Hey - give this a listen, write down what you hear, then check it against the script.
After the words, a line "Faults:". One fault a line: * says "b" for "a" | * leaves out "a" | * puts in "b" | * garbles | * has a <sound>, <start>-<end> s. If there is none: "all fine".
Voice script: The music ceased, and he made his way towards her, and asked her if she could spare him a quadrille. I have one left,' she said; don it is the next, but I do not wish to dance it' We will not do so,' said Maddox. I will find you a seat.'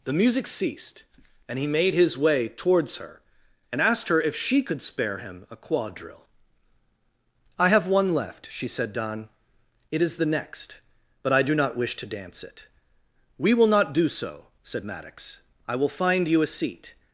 The music ceased, and he made his way towards her, and asked her if she could spare him a quadrille. I have one left,' she said; don it is the next, but I do not wish to dance it' We will not do so,' said Maddox. I will find you a seat.'
Faults:
all fine